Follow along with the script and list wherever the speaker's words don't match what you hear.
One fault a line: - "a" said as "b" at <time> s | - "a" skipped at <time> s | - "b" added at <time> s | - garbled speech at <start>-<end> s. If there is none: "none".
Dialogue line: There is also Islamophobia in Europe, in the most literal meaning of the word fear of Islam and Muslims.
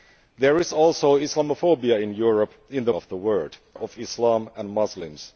- "most literal meaning" skipped at 2.9 s
- "fear" skipped at 3.6 s